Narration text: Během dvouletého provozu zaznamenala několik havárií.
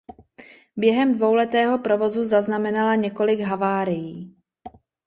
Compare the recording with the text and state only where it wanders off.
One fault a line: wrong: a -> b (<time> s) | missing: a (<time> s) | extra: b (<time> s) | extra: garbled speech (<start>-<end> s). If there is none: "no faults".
no faults